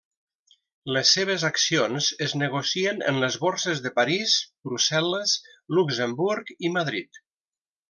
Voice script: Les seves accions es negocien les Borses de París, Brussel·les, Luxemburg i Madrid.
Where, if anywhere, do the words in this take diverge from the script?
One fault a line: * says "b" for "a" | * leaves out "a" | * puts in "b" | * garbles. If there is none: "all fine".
* puts in "en"